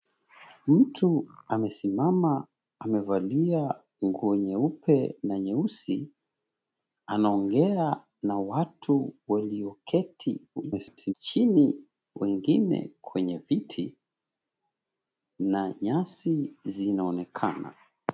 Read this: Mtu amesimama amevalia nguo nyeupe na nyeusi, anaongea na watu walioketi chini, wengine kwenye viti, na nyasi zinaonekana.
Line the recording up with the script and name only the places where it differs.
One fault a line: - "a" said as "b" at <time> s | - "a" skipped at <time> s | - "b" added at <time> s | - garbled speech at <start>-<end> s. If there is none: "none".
- garbled speech at 10.6-11.1 s